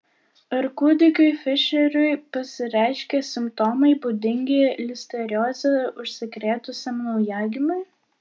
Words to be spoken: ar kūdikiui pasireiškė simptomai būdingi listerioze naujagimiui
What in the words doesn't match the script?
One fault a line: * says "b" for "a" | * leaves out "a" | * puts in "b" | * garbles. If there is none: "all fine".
* puts in "fišeriui"
* puts in "užsikrėtusiam"